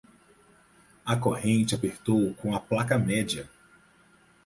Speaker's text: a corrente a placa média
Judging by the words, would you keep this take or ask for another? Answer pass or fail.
fail